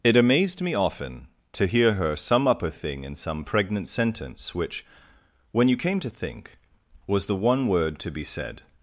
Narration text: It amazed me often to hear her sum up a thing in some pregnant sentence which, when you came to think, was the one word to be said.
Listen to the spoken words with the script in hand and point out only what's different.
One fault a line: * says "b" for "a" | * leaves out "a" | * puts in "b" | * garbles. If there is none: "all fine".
all fine